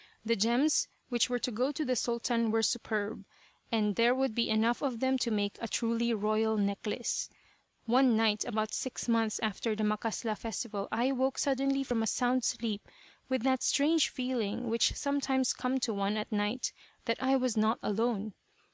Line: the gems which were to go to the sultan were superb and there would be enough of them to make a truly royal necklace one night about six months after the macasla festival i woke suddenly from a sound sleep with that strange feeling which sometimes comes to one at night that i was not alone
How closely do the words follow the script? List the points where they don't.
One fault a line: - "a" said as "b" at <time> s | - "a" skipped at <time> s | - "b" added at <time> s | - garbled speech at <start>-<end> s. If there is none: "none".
none